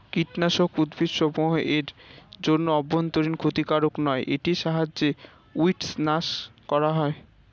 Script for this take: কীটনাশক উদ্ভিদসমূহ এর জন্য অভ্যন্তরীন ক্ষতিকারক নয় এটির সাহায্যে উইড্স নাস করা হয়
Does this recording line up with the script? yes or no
yes